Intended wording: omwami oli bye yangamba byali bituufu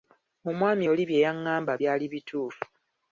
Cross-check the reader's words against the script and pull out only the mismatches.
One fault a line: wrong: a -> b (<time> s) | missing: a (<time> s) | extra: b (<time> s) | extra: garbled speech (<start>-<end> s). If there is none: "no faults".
no faults